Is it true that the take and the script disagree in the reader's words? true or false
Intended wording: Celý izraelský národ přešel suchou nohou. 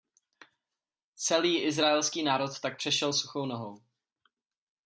true